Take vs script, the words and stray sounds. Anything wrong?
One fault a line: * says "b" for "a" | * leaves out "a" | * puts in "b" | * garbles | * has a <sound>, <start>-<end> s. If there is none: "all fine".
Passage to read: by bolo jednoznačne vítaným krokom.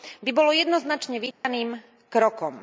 * has a dropout, 1.3-1.4 s